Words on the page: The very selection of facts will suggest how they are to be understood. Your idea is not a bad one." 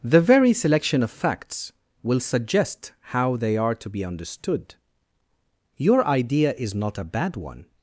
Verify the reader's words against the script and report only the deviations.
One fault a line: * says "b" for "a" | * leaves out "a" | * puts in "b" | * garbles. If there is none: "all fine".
all fine